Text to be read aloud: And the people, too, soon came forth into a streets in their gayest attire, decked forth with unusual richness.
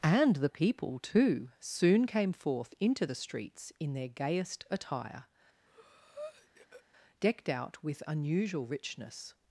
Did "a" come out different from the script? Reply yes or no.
yes